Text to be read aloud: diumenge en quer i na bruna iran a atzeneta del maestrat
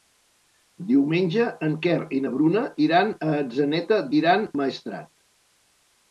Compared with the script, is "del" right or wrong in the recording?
wrong